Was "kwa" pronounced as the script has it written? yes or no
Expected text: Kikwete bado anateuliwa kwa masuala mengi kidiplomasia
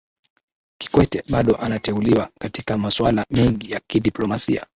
no